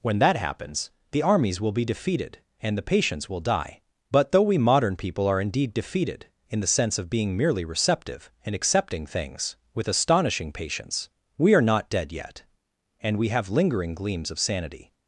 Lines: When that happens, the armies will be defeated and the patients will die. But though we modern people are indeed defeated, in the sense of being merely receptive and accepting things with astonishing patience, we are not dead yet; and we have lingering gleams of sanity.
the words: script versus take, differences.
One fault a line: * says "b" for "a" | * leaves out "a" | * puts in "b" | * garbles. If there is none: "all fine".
all fine